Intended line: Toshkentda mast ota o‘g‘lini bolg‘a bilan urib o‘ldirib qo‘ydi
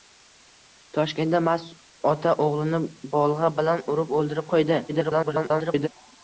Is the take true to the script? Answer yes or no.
no